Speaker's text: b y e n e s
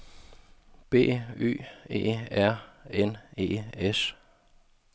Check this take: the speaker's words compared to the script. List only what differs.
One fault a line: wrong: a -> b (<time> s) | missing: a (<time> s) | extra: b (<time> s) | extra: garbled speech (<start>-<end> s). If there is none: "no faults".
extra: r (2.3 s)